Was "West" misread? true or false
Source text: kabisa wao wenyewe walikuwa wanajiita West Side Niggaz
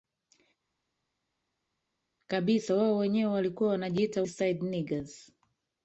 true